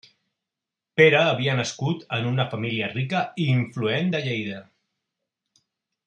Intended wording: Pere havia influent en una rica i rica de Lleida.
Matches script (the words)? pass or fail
fail